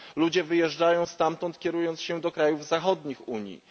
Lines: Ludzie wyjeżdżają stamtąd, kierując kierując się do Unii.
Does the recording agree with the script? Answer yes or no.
no